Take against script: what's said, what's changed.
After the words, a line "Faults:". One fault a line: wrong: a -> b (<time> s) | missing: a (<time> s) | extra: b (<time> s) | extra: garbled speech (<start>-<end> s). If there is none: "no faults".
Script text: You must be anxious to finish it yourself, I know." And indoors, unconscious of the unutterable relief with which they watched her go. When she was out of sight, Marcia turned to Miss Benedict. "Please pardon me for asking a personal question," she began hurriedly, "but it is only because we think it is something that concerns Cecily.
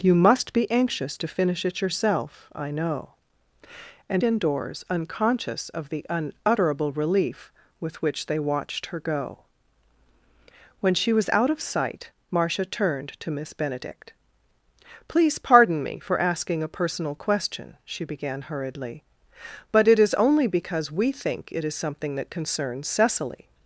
You must be anxious to finish it yourself, I know." And indoors, unconscious of the unutterable relief with which they watched her go. When she was out of sight, Marcia turned to Miss Benedict. "Please pardon me for asking a personal question," she began hurriedly, "but it is only because we think it is something that concerns Cecily.
Faults:
no faults